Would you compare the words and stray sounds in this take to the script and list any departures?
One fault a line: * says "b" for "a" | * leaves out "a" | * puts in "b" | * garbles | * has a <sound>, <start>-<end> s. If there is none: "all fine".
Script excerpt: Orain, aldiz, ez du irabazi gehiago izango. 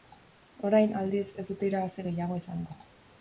* says "dute" for "du"